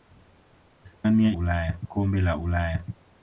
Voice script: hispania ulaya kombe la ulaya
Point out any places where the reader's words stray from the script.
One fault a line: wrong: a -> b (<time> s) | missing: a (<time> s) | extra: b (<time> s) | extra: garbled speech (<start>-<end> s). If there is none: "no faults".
no faults